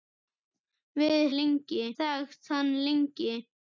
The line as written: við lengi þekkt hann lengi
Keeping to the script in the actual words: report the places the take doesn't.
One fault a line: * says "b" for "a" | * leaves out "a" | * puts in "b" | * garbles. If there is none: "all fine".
all fine